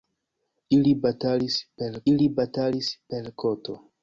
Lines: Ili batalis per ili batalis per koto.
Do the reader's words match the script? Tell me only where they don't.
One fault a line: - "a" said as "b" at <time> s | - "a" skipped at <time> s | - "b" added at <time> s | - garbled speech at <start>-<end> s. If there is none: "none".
none